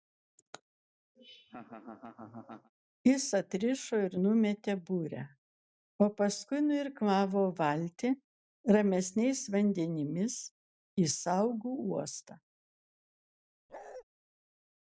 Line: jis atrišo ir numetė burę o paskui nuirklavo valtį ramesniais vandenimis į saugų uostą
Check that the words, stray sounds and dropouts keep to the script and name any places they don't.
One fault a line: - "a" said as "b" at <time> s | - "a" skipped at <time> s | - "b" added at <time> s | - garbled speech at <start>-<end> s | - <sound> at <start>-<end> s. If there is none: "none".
- laugh at 1.2-2.7 s
- bark at 13.7-14.0 s